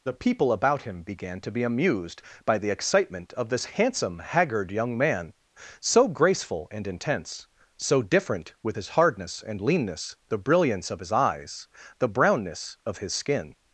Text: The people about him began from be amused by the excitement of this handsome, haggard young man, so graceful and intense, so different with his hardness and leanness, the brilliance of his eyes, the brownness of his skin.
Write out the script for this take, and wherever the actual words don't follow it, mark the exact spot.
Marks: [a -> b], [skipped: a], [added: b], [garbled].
The people about him began [from -> to] be amused by the excitement of this handsome, haggard young man, so graceful and intense, so different with his hardness and leanness, the brilliance of his eyes, the brownness of his skin.